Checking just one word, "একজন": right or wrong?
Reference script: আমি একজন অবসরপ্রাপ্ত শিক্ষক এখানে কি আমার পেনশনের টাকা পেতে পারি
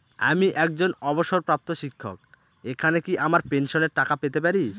right